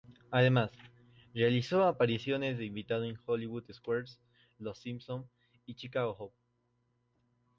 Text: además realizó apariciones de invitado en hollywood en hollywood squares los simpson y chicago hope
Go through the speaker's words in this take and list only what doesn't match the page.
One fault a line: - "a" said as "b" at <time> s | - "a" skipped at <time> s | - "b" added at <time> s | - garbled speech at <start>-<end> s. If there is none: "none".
- "en hollywood" skipped at 3.7 s